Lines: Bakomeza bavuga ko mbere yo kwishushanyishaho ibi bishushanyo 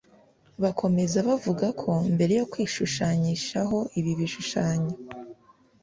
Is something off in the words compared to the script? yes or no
no